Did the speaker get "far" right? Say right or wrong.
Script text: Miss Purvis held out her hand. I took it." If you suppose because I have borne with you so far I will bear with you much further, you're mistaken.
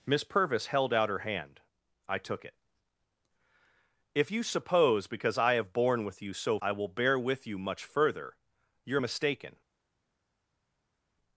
wrong